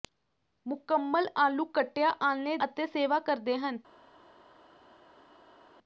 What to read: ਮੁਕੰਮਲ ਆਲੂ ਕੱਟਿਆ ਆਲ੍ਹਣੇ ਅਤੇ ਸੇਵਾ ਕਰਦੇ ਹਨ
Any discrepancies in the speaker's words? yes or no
no